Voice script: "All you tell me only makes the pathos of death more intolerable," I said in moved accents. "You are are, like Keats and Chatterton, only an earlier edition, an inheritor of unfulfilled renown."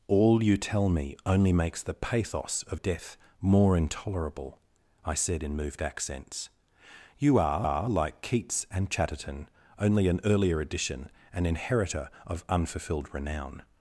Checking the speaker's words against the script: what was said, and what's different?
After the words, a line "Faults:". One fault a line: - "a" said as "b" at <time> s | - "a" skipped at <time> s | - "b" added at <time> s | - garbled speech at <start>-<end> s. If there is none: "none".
"All you tell me only makes the pathos of death more intolerable," I said in moved accents. "You are are, like Keats and Chatterton, only an earlier edition, an inheritor of unfulfilled renown."
Faults:
none